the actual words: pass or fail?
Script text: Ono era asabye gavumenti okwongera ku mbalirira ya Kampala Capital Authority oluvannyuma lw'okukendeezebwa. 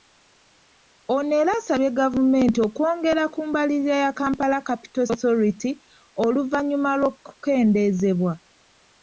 pass